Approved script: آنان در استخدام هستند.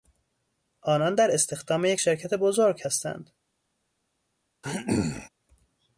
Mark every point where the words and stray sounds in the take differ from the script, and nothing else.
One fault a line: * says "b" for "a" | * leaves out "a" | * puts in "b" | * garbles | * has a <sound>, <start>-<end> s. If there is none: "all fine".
* puts in "یک شرکت بزرگ"
* has a throat clearing, 4.6-5.3 s